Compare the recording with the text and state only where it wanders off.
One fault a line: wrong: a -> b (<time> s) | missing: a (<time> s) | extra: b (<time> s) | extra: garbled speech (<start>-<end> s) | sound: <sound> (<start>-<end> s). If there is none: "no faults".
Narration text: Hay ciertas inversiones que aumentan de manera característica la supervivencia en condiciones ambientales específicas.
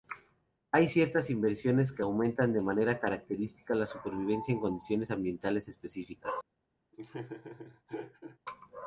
sound: laugh (6.9-8.4 s)